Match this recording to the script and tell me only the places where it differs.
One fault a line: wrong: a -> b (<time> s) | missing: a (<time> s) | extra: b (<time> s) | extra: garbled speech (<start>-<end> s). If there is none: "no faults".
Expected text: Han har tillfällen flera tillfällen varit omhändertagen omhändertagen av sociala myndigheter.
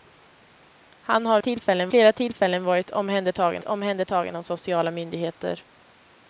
no faults